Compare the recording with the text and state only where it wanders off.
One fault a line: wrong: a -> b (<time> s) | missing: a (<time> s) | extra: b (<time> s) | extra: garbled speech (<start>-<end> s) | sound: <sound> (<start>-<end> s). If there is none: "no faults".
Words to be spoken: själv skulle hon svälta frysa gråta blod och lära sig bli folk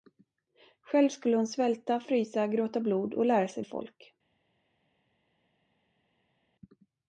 missing: bli (3.6 s)